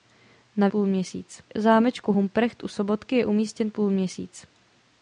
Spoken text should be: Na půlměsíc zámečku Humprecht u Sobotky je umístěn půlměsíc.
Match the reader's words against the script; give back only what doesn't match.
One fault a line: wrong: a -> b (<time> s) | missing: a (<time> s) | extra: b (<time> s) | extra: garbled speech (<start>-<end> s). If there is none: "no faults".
no faults